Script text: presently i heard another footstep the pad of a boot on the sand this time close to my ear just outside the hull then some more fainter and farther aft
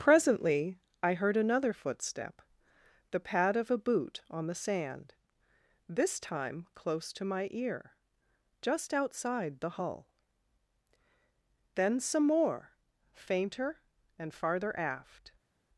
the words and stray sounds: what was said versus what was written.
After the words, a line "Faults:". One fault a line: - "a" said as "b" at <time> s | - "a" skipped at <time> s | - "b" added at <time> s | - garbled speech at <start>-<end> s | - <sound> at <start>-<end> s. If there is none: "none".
presently i heard another footstep the pad of a boot on the sand this time close to my ear just outside the hull then some more fainter and farther aft
Faults:
none